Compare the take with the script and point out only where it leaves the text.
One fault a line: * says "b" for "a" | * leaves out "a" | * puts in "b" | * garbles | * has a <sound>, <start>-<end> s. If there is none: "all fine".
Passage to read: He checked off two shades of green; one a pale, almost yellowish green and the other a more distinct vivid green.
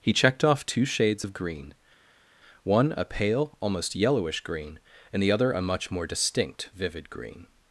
* puts in "much"